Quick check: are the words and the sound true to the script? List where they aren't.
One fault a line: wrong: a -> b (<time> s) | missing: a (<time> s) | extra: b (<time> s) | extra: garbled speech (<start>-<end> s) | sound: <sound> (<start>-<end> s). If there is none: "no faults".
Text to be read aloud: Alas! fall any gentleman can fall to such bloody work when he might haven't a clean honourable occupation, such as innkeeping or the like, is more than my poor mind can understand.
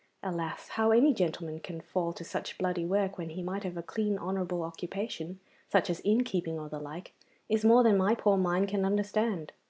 wrong: fall -> how (0.7 s)
wrong: haven't -> have (3.6 s)